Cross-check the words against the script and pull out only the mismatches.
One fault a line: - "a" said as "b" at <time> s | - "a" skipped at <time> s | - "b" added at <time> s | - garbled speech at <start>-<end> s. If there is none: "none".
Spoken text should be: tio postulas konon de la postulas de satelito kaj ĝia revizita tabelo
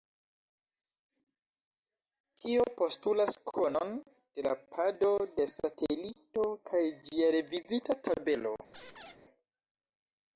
- "postulas" said as "pado" at 4.7 s